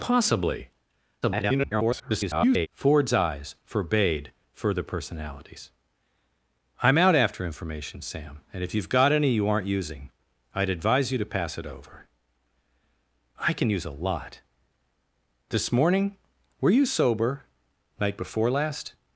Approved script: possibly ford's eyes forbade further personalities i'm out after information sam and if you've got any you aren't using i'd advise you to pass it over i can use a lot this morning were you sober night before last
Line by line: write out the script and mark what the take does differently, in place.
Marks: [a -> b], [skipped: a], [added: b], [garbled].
possibly [garbled] ford's eyes forbade further personalities i'm out after information sam and if you've got any you aren't using i'd advise you to pass it over i can use a lot this morning were you sober night before last